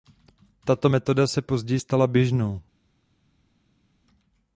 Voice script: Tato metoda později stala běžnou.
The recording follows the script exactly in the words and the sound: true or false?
false